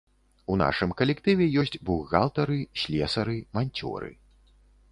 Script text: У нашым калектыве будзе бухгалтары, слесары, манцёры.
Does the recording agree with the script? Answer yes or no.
no